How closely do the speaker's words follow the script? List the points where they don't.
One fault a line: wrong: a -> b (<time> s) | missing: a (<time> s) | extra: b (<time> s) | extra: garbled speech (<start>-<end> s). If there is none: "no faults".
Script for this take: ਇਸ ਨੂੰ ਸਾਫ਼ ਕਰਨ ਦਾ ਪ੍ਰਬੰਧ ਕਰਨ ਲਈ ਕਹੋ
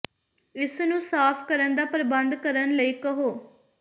no faults